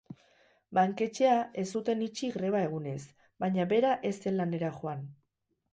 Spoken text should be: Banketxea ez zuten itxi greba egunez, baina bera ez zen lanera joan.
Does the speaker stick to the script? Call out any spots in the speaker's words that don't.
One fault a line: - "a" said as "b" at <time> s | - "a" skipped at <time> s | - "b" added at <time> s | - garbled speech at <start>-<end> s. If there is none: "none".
none